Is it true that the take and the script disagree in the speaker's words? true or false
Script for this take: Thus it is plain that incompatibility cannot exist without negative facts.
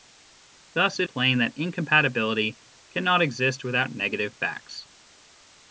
true